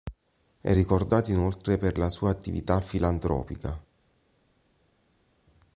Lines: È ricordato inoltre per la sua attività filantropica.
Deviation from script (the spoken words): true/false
false